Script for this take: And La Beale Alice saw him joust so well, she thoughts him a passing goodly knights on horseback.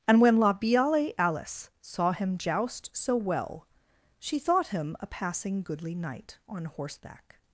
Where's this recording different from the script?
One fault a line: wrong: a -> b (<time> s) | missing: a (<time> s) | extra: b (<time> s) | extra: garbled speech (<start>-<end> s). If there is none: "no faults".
extra: when (0.2 s)
wrong: thoughts -> thought (4.4 s)
wrong: knights -> knight (5.9 s)